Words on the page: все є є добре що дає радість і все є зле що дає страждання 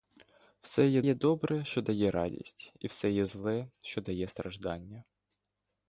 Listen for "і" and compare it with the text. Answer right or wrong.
right